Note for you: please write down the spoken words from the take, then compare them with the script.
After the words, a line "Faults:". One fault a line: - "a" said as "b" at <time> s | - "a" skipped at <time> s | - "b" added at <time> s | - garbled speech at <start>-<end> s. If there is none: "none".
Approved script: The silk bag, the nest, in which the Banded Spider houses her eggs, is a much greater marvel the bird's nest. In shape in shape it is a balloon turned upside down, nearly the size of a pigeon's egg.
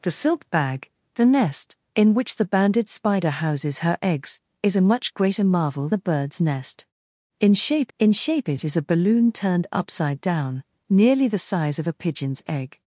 The silk bag, the nest, in which the Banded Spider houses her eggs, is a much greater marvel the bird's nest. In shape in shape it is a balloon turned upside down, nearly the size of a pigeon's egg.
Faults:
none